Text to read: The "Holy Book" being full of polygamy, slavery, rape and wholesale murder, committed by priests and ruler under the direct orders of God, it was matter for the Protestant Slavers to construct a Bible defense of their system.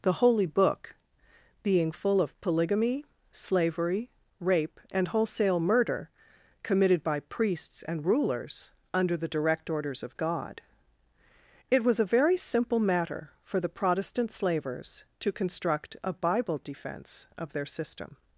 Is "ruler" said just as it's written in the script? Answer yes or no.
no